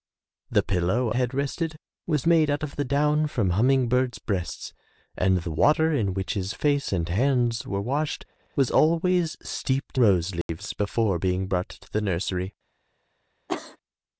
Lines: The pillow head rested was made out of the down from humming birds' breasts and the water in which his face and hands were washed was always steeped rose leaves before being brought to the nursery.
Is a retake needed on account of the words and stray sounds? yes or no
yes